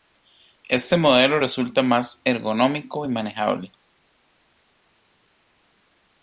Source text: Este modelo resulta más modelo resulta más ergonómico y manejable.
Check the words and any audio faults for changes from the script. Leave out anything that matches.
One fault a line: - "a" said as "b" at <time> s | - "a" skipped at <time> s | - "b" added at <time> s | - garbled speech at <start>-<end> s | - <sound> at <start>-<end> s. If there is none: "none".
- "modelo resulta más" skipped at 2.2 s